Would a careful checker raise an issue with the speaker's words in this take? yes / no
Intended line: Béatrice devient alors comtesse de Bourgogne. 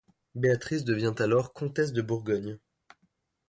no